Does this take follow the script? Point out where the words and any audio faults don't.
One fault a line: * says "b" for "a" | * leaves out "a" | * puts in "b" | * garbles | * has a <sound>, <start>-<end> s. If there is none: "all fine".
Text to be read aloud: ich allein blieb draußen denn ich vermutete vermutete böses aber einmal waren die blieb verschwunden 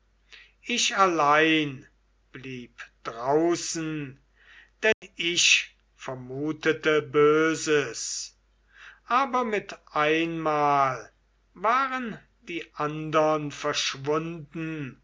* has a dropout, 4.9-5.0 s
* leaves out "vermutete"
* puts in "mit"
* says "andern" for "blieb"